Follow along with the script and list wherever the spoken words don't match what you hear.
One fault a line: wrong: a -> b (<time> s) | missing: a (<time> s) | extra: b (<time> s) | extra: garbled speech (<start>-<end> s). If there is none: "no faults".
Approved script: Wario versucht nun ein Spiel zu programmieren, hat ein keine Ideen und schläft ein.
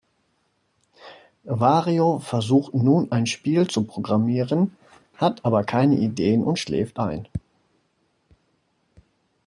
wrong: ein -> aber (5.4 s)